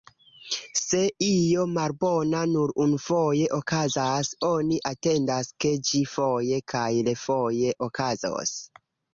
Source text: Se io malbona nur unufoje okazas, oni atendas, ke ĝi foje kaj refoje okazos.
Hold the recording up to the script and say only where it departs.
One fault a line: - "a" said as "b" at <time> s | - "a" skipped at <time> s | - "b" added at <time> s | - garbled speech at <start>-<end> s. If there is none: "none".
none